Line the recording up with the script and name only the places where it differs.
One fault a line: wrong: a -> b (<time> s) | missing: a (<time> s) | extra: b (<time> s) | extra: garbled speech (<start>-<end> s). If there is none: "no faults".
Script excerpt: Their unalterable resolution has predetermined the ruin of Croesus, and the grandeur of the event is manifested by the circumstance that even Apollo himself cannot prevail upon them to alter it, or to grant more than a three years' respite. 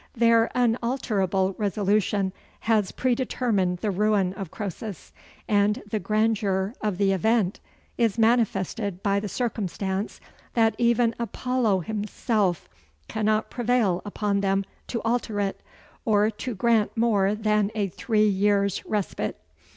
no faults